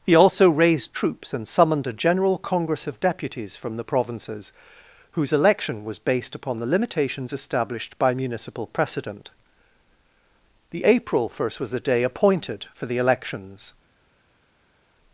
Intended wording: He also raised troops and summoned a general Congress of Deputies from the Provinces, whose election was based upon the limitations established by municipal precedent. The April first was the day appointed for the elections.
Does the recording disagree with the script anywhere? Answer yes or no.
no